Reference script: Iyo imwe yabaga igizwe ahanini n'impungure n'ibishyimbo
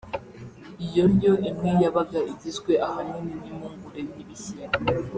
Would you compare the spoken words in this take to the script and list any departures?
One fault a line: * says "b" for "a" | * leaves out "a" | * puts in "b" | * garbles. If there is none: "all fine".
* puts in "ndyo"